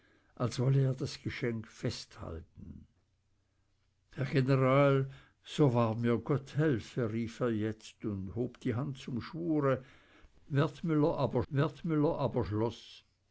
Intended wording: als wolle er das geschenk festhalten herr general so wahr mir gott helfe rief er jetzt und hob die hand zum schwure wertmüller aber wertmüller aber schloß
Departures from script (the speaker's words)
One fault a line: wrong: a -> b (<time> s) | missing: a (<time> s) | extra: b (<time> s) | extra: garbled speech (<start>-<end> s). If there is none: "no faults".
no faults